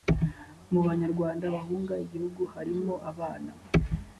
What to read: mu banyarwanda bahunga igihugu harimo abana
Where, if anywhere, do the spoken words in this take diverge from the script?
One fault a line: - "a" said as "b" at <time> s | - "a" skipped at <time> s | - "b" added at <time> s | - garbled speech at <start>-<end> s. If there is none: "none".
none